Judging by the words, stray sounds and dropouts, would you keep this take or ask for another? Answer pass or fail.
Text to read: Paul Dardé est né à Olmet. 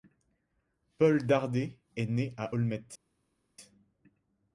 pass